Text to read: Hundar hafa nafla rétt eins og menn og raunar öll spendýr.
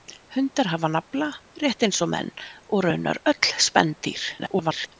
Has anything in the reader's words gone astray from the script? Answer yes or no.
yes